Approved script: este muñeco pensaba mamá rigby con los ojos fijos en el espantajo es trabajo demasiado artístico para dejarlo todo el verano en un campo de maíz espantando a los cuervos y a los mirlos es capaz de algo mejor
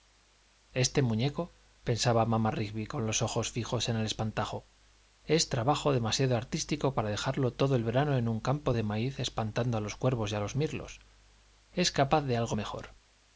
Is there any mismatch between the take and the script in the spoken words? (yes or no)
no